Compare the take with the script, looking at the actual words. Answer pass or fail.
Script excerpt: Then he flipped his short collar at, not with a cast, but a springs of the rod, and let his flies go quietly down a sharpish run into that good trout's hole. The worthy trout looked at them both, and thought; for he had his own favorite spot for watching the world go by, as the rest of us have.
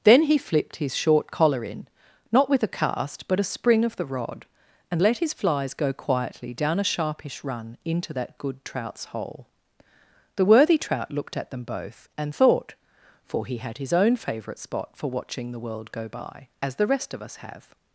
fail